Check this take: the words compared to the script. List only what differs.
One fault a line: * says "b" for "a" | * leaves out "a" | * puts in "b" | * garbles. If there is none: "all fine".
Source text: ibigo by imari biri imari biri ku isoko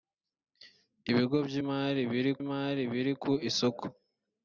all fine